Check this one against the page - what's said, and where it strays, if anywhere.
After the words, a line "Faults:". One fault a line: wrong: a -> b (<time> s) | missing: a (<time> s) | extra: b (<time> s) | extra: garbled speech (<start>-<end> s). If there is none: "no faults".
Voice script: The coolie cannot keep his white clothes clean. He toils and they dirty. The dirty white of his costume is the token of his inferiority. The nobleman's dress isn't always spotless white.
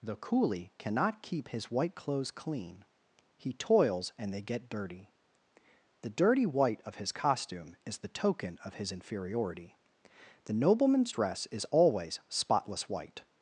The coolie cannot keep his white clothes clean. He toils and they get dirty. The dirty white of his costume is the token of his inferiority. The nobleman's dress is always spotless white.
Faults:
extra: get (4.4 s)
wrong: isn't -> is (11.5 s)